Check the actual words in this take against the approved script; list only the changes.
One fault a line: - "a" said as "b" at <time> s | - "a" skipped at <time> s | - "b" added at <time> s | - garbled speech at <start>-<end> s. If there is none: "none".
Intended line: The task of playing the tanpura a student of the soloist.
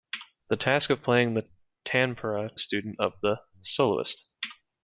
none